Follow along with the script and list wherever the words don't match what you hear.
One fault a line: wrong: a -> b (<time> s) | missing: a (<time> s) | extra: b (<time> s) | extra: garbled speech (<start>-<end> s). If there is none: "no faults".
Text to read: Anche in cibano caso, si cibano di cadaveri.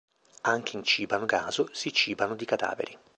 no faults